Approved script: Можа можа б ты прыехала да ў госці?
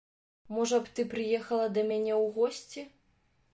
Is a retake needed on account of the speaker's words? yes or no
yes